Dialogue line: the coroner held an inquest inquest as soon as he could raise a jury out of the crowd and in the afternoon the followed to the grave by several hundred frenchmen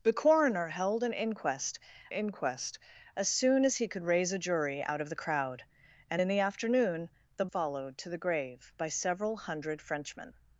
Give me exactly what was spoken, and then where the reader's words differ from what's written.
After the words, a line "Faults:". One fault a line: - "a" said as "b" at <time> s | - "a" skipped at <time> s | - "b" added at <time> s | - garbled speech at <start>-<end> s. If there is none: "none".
the coroner held an inquest inquest as soon as he could raise a jury out of the crowd and in the afternoon the followed to the grave by several hundred frenchmen
Faults:
none